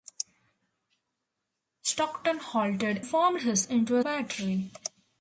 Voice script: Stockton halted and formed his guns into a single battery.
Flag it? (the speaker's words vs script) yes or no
yes